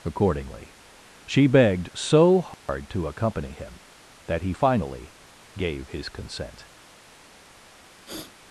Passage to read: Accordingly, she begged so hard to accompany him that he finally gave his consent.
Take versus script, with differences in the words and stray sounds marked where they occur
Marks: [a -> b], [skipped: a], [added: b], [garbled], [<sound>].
Accordingly, she begged so hard [dropout] to accompany him that he finally gave his consent. [sniff]